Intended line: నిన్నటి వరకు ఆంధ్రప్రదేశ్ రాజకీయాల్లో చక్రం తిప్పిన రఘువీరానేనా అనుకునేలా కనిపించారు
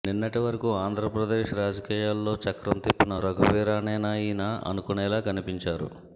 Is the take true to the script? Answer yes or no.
no